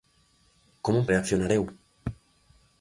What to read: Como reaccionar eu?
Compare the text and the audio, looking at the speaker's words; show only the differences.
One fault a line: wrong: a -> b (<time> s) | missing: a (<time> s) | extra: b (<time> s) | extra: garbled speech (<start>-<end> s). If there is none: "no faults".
no faults